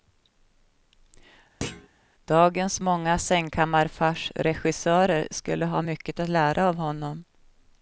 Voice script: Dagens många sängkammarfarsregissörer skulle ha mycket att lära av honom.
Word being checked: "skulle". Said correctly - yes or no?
yes